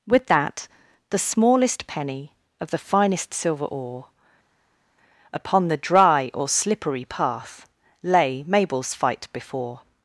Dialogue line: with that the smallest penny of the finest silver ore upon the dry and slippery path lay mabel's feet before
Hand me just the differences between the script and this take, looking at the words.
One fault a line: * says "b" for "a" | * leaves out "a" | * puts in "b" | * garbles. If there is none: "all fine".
* says "or" for "and"
* says "fight" for "feet"